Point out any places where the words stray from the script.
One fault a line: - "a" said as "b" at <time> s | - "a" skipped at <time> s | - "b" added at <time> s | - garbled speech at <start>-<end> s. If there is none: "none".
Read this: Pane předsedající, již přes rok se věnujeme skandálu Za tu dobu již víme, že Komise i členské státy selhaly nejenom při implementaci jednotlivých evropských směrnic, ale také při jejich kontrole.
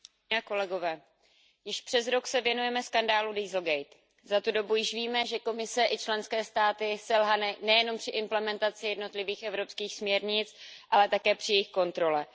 none